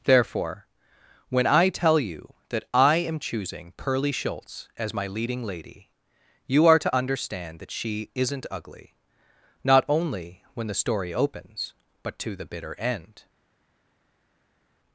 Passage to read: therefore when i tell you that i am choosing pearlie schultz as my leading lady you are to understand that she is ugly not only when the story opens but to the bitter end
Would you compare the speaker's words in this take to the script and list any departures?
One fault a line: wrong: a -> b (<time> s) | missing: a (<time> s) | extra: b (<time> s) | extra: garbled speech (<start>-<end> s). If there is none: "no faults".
wrong: is -> isn't (8.1 s)